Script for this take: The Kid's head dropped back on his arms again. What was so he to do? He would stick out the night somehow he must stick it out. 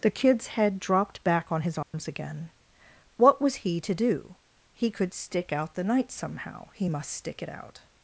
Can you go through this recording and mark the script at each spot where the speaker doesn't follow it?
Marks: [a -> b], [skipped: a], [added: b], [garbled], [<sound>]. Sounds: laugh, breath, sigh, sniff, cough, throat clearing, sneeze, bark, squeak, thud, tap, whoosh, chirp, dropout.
The Kid's head dropped back on his arms [dropout] again. What was [skipped: so] he to do? He [would -> could] stick out the night somehow he must stick it out.